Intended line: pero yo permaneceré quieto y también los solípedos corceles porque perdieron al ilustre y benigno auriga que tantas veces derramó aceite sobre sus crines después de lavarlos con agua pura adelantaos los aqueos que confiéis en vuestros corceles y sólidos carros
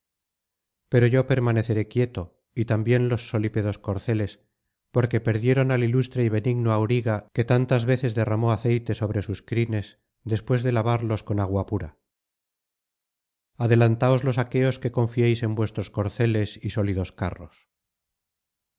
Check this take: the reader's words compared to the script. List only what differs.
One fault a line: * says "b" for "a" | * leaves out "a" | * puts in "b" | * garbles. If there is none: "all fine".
all fine